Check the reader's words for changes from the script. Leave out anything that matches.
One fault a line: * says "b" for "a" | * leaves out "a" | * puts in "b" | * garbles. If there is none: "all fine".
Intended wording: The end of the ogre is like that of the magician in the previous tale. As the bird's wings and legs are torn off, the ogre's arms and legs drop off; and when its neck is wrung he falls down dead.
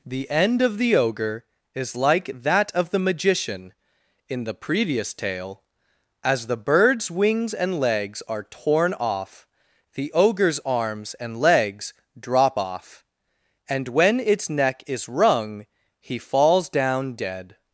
all fine